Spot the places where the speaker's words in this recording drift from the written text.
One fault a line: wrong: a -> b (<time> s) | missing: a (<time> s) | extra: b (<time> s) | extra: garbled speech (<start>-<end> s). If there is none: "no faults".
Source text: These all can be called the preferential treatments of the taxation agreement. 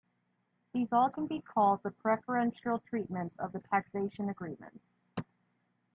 no faults